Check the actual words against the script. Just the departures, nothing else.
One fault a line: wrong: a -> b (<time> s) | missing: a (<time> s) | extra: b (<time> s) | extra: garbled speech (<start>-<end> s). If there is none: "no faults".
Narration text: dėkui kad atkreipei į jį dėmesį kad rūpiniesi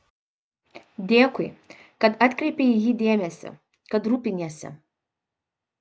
no faults